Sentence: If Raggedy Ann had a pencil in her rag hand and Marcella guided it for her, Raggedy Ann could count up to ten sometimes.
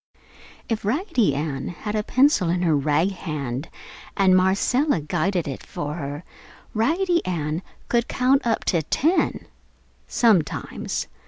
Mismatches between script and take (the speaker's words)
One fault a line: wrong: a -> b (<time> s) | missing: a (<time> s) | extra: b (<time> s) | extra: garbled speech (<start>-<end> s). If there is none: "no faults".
no faults